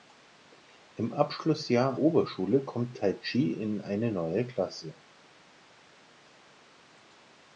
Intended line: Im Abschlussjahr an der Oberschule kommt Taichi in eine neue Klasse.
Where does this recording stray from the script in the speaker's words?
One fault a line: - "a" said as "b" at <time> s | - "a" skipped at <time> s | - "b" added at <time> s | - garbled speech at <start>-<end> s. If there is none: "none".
- "an der" skipped at 2.0 s